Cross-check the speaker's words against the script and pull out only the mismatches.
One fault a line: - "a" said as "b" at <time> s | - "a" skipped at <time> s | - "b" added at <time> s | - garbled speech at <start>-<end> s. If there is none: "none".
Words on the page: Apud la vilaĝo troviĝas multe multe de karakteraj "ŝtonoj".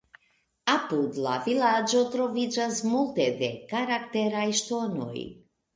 - "multe" skipped at 3.3 s